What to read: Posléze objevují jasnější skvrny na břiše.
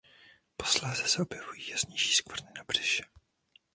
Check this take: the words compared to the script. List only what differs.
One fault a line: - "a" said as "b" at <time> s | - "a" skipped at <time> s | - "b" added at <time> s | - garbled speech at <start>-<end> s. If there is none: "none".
- "se" added at 1.1 s